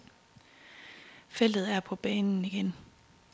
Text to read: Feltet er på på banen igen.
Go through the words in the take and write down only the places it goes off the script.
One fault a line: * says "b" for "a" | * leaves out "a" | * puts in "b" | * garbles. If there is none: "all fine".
* leaves out "på"